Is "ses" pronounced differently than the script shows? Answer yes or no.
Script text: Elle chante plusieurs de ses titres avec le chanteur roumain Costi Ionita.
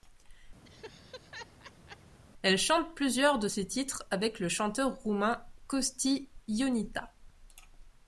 no